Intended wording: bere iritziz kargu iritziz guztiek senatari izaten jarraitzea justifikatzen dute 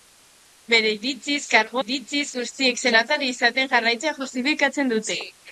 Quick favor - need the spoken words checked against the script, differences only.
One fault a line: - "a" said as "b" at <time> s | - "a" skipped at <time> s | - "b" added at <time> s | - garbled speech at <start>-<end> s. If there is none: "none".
none